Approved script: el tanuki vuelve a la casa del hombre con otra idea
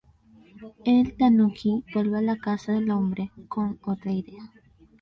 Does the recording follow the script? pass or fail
pass